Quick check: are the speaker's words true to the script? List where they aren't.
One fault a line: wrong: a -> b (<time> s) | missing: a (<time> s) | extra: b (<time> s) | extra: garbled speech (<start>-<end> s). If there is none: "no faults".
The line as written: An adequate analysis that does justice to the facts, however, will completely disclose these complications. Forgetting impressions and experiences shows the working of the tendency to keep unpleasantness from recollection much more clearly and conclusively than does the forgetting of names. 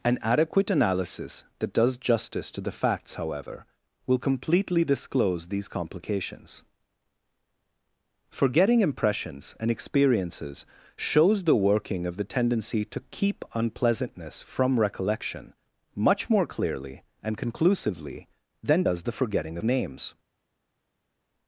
missing: of (19.6 s)